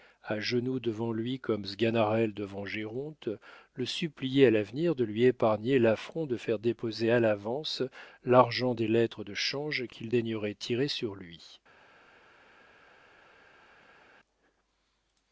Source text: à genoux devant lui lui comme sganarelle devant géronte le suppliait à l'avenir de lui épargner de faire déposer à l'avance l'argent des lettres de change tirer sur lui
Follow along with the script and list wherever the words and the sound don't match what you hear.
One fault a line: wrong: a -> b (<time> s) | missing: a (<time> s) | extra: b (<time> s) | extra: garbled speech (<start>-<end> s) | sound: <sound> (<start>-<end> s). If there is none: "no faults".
missing: lui (1.4 s)
extra: l'affront (5.8 s)
extra: qu'il daignerait (9.8 s)